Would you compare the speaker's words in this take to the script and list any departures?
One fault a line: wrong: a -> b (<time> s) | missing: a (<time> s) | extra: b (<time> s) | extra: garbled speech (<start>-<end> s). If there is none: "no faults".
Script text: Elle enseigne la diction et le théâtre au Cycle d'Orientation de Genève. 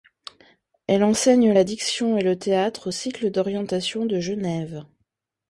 no faults